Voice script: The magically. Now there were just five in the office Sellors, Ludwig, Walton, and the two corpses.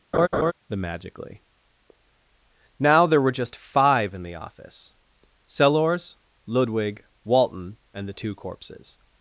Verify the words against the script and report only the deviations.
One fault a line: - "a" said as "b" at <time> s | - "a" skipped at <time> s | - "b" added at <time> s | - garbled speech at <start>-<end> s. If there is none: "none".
none